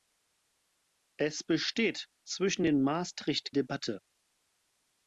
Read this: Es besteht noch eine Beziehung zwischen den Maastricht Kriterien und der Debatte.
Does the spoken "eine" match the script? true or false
false